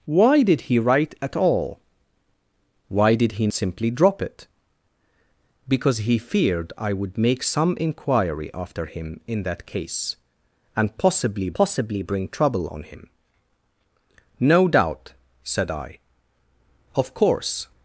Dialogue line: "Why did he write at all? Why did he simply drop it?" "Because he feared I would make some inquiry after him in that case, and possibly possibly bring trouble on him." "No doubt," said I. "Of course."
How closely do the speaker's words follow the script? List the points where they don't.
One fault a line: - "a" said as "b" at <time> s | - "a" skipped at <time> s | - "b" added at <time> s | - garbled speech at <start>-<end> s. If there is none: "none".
none